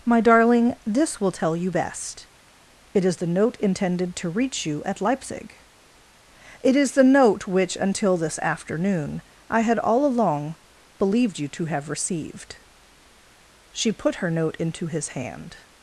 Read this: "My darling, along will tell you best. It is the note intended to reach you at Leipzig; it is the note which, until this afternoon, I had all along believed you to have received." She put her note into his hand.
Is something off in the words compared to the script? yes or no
yes